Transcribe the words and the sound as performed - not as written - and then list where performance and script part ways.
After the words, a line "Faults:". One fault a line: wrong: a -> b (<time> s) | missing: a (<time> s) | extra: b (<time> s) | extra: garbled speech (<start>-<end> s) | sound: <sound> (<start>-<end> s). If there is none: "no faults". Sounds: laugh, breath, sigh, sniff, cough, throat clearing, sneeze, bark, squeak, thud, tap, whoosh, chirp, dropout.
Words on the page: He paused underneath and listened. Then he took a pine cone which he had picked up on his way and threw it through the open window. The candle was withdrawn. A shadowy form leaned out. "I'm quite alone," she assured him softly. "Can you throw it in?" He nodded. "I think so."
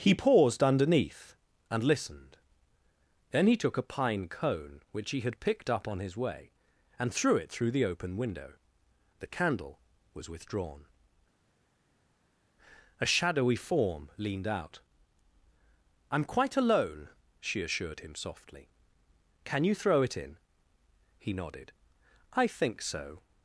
He paused underneath and listened. Then he took a pine cone which he had picked up on his way and threw it through the open window. The candle was withdrawn. A shadowy form leaned out. "I'm quite alone," she assured him softly. "Can you throw it in?" He nodded. "I think so."
Faults:
no faults